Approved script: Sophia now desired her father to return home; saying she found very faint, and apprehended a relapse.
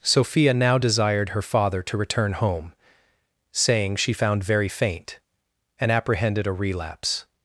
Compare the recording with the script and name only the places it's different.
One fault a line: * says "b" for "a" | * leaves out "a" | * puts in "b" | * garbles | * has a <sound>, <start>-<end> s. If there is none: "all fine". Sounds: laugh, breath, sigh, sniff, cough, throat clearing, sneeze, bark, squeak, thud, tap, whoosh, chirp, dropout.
all fine